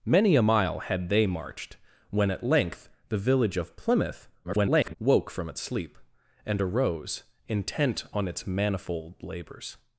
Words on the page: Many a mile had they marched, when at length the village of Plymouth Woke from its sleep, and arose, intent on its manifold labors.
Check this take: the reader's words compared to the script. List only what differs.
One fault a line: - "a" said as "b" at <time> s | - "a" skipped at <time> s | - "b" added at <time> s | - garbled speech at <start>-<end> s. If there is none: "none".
- garbled speech at 4.4-4.9 s